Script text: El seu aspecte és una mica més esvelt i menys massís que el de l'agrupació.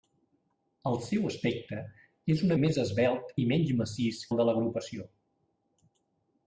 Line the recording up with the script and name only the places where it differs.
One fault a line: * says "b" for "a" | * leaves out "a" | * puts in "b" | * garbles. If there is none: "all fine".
* leaves out "mica"
* leaves out "que"